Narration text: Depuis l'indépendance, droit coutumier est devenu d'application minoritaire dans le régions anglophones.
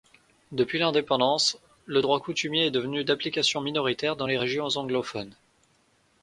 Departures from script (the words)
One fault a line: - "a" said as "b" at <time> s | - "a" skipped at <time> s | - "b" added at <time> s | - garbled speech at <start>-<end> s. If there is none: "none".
- "le" added at 1.9 s
- "le" said as "les" at 4.3 s